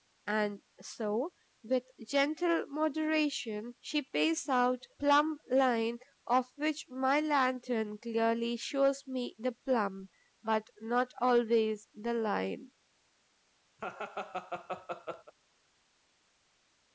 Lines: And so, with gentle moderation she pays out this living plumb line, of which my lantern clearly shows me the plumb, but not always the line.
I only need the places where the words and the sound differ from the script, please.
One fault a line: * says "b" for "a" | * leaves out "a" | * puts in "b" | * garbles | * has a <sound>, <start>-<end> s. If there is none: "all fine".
* leaves out "this living"
* has a laugh, 13.8-15.3 s